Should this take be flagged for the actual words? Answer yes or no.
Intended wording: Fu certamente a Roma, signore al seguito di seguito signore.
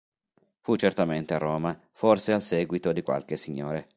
yes